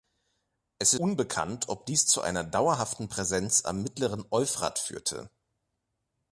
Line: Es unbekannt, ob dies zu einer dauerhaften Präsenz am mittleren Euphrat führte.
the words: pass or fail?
pass